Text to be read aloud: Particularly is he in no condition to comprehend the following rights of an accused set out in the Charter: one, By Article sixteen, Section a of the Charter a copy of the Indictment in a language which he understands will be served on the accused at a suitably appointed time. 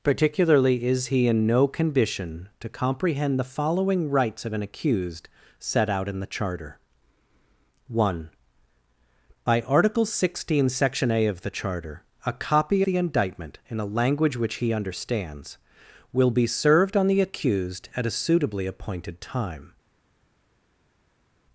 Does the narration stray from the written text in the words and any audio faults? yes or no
yes